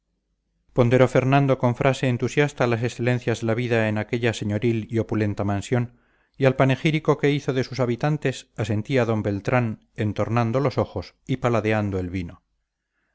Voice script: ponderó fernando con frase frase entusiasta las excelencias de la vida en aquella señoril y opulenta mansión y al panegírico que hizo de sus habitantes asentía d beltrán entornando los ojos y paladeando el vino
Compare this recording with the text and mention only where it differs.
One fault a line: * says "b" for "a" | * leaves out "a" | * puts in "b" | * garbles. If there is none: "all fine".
* leaves out "frase"